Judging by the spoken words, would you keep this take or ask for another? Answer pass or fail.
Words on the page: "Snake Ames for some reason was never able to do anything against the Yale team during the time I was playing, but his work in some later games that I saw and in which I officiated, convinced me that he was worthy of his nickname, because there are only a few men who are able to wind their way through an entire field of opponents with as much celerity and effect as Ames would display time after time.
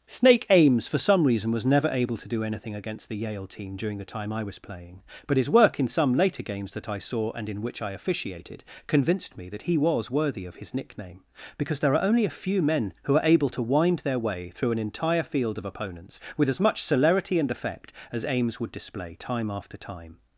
pass